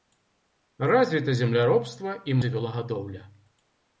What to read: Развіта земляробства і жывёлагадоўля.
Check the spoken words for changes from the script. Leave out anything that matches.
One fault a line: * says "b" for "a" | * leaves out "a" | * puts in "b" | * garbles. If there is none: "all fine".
all fine